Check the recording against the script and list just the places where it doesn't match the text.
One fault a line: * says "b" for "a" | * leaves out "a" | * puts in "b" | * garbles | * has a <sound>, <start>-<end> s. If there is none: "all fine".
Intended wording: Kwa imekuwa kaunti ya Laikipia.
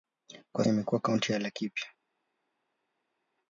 all fine